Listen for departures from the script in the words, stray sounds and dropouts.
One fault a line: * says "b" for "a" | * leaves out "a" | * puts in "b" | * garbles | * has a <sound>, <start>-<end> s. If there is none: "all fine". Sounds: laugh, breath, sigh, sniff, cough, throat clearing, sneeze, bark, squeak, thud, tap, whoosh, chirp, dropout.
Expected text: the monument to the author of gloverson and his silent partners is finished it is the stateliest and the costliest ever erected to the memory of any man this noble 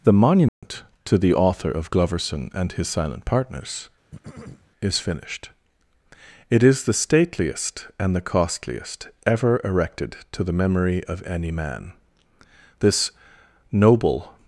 * has a dropout, 0.5-0.6 s
* has a throat clearing, 4.1-4.7 s